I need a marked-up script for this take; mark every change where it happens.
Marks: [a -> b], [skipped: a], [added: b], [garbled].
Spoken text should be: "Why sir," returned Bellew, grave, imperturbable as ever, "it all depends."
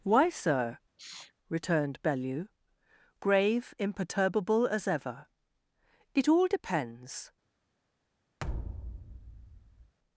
"Why sir," returned Bellew, grave, imperturbable as ever, "it all depends."